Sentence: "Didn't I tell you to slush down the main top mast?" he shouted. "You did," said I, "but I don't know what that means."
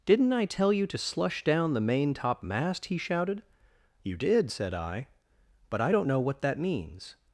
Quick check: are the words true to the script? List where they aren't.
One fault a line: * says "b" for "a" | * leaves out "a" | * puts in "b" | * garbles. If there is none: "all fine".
all fine